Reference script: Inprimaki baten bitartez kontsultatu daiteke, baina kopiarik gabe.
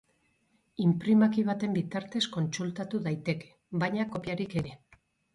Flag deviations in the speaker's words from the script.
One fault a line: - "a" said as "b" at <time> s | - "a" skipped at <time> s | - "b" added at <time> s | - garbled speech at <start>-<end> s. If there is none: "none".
none